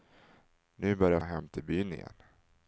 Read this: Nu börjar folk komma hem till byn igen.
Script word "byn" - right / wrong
right